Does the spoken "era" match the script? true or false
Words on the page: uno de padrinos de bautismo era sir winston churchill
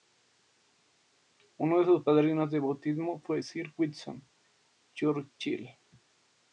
false